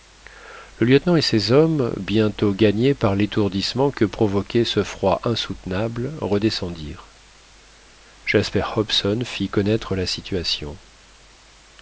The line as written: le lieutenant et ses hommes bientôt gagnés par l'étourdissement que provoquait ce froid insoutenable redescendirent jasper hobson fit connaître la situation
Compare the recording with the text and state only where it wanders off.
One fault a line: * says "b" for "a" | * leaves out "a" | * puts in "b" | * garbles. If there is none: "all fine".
all fine